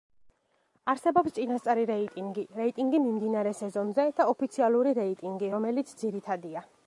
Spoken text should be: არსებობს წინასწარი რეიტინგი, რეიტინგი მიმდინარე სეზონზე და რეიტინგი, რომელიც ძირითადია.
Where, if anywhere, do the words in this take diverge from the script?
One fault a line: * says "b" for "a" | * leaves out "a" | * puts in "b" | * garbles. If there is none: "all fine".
* puts in "ოფიციალური"